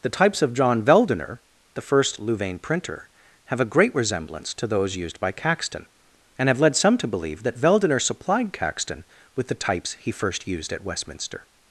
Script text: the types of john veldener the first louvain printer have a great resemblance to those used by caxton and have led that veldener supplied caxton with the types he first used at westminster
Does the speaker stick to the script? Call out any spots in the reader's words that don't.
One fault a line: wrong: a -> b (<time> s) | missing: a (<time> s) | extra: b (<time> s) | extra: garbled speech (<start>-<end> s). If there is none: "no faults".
extra: some to believe (6.8 s)